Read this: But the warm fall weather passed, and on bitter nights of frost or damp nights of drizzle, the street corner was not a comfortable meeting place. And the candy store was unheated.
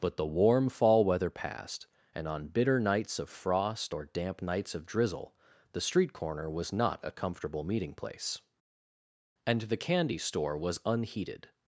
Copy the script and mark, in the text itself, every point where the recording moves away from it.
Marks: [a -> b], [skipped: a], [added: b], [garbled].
But the warm fall weather passed, and on bitter nights of frost or damp nights of drizzle, the street corner was not a comfortable meeting place. And the candy store was unheated.